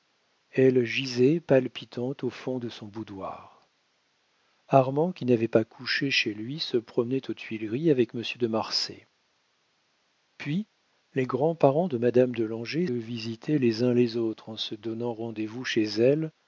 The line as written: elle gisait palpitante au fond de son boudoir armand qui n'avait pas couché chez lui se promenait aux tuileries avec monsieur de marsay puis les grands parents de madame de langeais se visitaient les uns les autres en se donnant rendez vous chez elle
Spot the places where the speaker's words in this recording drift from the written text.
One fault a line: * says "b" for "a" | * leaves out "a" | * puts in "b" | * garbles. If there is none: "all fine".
* leaves out "se"